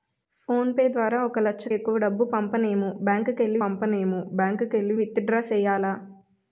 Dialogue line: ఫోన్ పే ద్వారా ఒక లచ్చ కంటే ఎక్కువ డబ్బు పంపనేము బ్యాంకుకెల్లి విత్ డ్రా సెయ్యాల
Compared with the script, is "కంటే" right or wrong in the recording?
wrong